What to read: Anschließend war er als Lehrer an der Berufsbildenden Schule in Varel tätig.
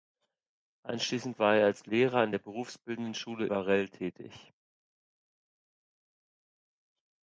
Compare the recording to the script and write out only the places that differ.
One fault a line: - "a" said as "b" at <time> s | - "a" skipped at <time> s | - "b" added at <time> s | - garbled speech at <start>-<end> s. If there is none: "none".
- "in" skipped at 3.5 s